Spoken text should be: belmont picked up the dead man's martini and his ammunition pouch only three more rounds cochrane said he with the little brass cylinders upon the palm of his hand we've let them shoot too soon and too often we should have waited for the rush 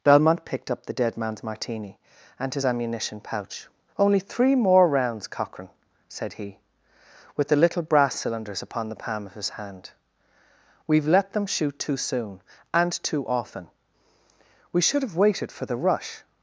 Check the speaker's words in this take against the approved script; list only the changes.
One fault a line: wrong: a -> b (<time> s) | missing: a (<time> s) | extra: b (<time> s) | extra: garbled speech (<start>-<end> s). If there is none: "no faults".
no faults